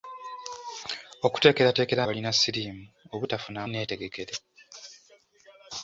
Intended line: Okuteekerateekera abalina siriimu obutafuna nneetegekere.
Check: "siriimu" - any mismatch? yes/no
no